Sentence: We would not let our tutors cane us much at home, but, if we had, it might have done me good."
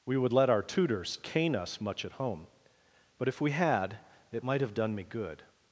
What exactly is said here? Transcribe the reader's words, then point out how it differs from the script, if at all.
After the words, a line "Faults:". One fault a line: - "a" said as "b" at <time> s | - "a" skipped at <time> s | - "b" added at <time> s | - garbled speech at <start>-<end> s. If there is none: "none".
We would let our tutors cane us much at home, but, if we had, it might have done me good."
Faults:
- "not" skipped at 0.3 s